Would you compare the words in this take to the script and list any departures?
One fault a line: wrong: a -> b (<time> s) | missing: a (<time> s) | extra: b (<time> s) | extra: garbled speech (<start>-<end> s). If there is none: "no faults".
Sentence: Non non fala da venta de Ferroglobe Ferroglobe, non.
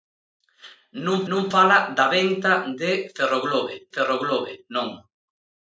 no faults